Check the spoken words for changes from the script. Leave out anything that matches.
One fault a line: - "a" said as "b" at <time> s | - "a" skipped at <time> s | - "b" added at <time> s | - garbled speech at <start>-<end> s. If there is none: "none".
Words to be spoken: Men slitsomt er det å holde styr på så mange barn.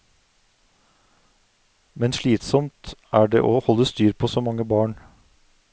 none